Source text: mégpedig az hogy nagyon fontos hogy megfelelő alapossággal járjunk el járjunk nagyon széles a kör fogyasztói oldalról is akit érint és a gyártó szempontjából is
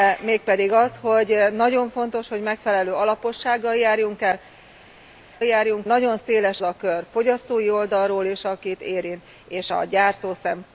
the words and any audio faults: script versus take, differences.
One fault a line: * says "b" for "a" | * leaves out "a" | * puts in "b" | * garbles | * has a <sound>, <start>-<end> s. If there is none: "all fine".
all fine